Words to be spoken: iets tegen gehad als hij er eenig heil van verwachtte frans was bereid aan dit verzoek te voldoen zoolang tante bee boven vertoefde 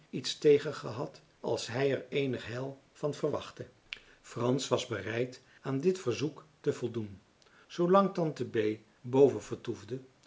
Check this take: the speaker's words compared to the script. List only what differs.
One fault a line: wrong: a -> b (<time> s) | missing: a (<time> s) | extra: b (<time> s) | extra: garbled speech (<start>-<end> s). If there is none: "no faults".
no faults